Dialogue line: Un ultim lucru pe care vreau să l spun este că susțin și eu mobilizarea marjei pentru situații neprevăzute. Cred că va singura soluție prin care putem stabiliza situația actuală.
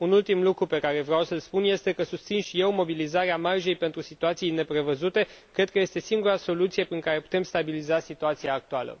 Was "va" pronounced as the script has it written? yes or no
no